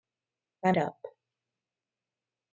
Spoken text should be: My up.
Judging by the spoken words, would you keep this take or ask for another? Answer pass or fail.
pass